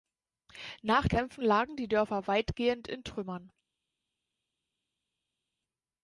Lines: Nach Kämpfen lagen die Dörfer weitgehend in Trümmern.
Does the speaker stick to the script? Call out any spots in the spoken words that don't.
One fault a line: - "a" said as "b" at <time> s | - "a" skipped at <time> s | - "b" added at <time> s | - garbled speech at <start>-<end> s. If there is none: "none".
none